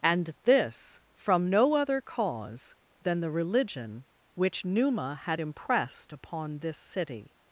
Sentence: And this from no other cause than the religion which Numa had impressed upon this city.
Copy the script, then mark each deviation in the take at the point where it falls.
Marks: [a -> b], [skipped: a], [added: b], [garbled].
And this from no other cause than the religion which Numa had impressed upon this city.